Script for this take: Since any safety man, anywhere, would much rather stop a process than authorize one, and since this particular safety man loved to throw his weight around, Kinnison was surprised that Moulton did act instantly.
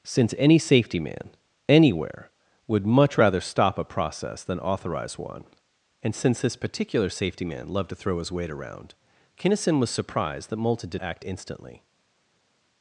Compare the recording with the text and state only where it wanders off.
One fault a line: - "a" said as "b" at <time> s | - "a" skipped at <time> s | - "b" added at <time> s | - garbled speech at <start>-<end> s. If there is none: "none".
none